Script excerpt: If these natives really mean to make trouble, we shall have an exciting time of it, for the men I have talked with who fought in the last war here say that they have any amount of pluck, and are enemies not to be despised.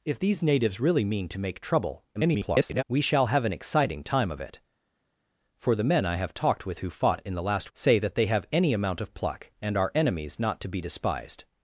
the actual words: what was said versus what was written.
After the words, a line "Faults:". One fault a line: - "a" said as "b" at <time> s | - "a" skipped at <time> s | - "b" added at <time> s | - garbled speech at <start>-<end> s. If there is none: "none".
If these natives really mean to make trouble, [garbled] we shall have an exciting time of it, for the men I have talked with who fought in the last say that they have any amount of pluck, and are enemies not to be despised.
Faults:
- garbled speech at 2.1-2.8 s
- "war here" skipped at 7.7 s